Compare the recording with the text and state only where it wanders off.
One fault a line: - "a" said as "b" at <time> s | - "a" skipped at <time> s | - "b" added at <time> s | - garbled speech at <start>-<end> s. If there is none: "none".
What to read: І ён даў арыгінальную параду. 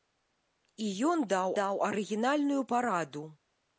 - "даў" added at 1.6 s